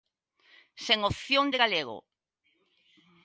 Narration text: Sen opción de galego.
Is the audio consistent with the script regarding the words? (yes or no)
yes